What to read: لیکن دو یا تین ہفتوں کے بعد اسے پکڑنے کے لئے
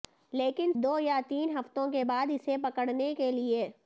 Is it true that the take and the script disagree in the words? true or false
false